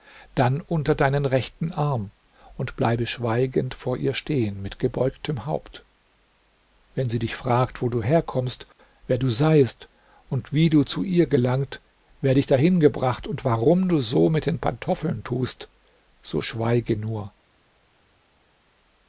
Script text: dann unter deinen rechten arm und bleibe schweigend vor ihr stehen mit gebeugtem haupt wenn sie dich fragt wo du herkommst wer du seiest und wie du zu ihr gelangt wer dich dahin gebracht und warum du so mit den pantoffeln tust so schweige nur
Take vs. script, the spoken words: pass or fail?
pass